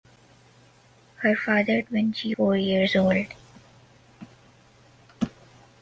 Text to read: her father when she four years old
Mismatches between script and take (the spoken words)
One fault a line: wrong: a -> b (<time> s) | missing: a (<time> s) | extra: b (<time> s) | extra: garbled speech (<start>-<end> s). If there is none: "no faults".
no faults